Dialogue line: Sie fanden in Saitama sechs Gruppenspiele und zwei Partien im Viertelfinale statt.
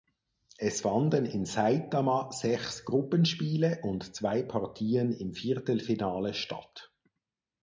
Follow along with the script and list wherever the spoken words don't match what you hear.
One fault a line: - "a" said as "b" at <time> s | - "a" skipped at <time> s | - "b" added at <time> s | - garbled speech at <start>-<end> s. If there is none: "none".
- "Sie" said as "Es" at 0.6 s